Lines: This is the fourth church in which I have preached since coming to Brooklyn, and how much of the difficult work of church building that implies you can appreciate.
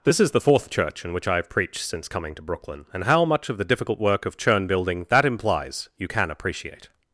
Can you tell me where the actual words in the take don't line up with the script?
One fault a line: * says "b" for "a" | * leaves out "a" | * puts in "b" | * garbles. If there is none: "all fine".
* says "churn" for "church"